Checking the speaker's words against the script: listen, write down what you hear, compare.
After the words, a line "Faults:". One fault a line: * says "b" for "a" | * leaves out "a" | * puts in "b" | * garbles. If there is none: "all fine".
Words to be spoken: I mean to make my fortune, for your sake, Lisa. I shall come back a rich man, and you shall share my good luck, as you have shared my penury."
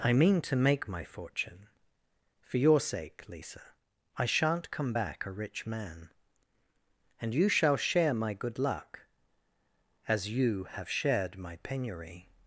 I mean to make my fortune, for your sake, Lisa. I shan't come back a rich man, and you shall share my good luck, as you have shared my penury."
Faults:
* says "shan't" for "shall"